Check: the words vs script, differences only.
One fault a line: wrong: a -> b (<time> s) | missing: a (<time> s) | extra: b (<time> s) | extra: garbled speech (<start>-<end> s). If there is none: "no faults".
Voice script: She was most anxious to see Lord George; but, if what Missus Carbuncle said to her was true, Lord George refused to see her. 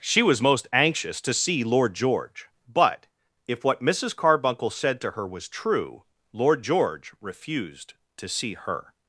no faults